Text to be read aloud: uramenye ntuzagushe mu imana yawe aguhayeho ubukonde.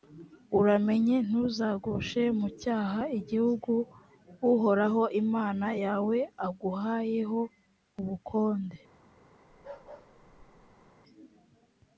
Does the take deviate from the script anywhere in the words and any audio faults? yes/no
yes